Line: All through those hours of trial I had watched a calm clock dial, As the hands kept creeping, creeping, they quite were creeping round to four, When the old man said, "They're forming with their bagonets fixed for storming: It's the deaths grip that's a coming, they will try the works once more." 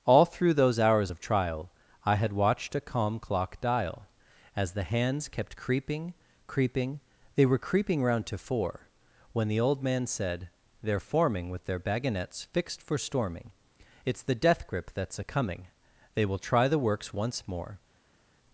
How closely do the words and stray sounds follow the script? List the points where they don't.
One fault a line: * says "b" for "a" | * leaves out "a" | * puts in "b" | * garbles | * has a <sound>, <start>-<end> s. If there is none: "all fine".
* leaves out "quite"
* says "death" for "deaths"